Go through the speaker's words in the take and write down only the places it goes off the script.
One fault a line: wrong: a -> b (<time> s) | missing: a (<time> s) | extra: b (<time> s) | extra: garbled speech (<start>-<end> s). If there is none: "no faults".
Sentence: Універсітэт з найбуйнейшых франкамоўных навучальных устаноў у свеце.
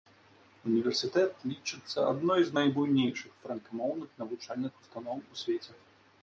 extra: лічыцца адной (1.5 s)